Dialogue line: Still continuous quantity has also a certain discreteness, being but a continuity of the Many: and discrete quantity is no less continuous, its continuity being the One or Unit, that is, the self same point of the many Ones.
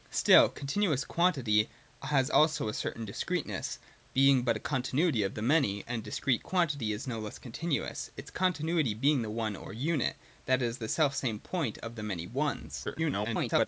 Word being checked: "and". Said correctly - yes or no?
yes